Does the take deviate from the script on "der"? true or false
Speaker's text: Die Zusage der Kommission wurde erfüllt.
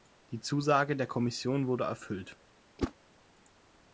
false